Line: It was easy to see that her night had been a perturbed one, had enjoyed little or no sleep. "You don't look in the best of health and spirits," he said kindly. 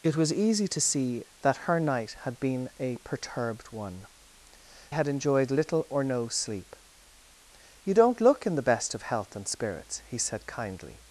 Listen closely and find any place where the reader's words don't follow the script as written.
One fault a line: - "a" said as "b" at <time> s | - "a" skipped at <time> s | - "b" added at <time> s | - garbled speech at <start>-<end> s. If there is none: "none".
none